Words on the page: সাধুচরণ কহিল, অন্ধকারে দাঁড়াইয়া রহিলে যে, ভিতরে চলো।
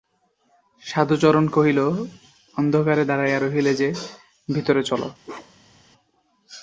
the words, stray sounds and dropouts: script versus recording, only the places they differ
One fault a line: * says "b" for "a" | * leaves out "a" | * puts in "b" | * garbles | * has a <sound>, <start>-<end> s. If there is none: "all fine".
* has a bark, 5.2-5.8 s